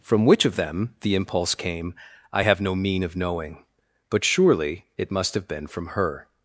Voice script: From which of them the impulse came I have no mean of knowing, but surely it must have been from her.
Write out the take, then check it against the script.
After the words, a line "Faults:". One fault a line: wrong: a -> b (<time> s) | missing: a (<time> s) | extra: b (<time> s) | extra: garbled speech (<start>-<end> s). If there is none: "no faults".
From which of them the impulse came I have no mean of knowing, but surely it must have been from her.
Faults:
no faults